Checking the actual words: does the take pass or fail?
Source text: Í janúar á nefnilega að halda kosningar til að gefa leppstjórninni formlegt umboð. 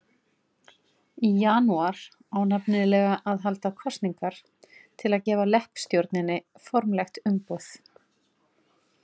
pass